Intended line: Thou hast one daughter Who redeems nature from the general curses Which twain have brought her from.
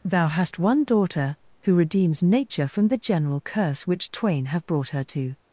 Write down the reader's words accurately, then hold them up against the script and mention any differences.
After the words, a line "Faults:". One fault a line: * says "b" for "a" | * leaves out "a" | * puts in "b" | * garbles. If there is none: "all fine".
Thou hast one daughter Who redeems nature from the general curse Which twain have brought her to.
Faults:
* says "curse" for "curses"
* says "to" for "from"